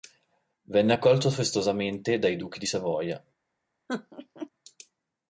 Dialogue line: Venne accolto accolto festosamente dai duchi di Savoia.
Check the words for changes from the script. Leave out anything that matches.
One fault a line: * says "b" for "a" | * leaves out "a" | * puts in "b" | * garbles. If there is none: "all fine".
* leaves out "accolto"